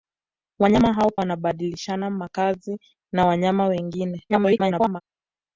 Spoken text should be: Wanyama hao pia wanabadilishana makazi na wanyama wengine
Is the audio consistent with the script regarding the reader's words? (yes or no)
no